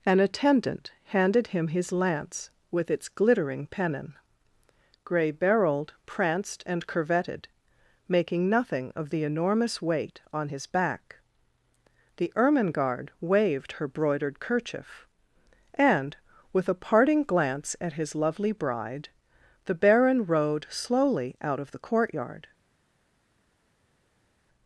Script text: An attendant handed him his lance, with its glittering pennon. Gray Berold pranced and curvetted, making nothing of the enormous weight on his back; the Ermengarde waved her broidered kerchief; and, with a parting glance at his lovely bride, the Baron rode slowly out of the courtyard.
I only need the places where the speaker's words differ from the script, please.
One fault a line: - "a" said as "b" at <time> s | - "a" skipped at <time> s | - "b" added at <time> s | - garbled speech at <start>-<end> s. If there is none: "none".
none